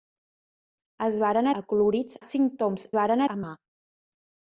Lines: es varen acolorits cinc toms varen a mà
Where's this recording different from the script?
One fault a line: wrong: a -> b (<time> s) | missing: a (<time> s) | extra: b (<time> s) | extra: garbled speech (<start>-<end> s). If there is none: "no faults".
no faults